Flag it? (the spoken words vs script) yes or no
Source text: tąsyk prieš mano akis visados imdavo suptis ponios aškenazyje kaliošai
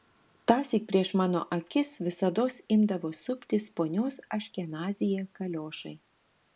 no